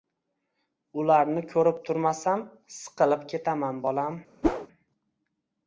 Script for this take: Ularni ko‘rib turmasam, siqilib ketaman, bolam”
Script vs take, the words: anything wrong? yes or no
no